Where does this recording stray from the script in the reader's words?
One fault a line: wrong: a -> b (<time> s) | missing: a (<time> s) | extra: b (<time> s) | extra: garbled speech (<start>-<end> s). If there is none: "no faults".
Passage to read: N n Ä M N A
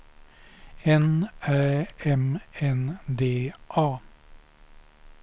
missing: n (1.3 s)
extra: D (3.2 s)